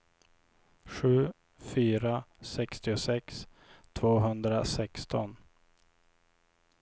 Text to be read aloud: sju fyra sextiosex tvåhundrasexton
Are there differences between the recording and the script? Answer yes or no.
no